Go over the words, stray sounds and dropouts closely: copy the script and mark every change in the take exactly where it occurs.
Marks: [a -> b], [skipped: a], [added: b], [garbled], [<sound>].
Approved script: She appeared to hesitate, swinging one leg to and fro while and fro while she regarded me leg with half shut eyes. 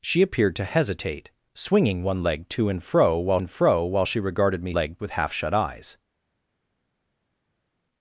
She appeared to hesitate, swinging one leg to and fro while and fro while she regarded me leg with half shut eyes.